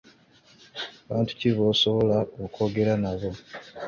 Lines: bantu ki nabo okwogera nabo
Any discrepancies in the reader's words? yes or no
yes